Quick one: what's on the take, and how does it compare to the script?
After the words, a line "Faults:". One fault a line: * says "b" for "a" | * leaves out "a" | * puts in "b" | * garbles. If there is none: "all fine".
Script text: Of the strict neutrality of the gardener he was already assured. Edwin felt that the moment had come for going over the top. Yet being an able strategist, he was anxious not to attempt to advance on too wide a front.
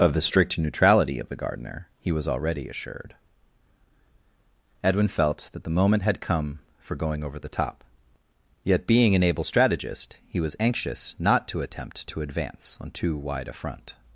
Of the strict neutrality of the gardener he was already assured. Edwin felt that the moment had come for going over the top. Yet being an able strategist, he was anxious not to attempt to advance on too wide a front.
Faults:
all fine